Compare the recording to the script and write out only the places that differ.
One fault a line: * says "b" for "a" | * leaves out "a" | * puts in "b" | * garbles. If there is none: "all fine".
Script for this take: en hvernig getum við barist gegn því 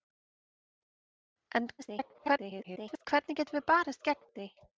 * garbles